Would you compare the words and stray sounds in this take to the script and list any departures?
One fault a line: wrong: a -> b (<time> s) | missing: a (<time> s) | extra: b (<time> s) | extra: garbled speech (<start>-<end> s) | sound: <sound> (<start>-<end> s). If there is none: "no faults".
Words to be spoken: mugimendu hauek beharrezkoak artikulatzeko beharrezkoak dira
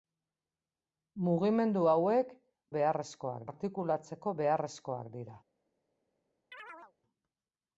sound: chirp (6.5-6.9 s)